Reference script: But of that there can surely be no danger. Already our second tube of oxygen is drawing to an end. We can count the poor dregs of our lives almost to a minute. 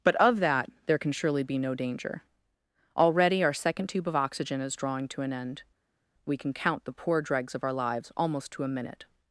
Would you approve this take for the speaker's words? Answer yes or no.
yes